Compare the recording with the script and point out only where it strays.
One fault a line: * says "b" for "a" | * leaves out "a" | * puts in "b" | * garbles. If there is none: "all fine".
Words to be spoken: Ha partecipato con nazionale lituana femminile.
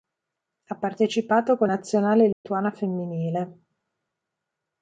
all fine